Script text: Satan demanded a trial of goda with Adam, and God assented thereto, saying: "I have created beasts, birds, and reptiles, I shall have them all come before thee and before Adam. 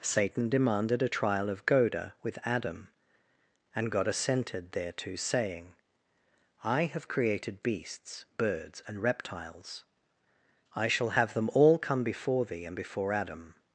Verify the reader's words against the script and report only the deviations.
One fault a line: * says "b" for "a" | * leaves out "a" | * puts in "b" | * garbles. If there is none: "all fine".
all fine